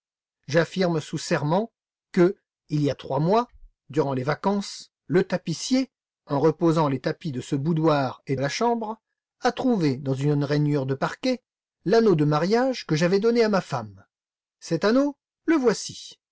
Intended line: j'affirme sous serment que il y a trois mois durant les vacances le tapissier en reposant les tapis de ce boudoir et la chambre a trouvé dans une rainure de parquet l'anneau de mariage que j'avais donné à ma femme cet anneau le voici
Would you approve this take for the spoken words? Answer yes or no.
yes